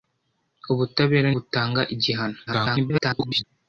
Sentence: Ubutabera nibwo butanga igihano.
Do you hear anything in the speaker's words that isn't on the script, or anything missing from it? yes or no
yes